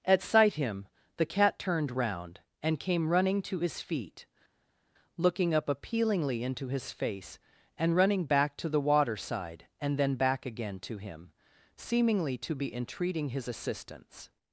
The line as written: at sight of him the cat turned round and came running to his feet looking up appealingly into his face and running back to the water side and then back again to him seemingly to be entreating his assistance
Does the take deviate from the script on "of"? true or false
true